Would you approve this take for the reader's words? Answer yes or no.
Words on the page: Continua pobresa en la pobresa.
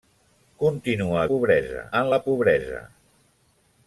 yes